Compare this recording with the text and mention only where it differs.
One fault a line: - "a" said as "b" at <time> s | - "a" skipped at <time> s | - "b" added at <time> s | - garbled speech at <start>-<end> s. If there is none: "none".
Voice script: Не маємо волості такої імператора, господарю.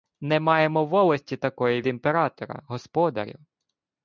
none